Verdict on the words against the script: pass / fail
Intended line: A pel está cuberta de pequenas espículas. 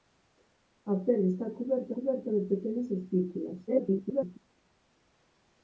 fail